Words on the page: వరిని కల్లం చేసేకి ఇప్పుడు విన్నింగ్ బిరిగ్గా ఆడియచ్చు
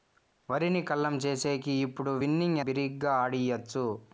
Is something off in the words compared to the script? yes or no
no